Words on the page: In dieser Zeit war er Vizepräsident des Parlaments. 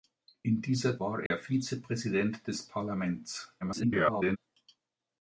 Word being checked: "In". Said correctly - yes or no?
yes